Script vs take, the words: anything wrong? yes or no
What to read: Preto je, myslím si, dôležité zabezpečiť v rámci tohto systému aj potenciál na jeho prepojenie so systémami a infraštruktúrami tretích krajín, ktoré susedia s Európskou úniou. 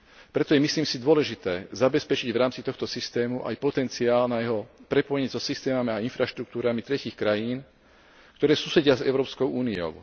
no